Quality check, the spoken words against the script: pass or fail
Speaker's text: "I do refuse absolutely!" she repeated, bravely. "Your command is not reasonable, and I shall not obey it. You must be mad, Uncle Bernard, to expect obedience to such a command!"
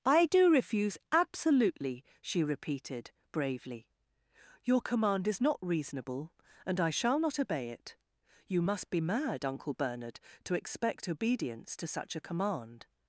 pass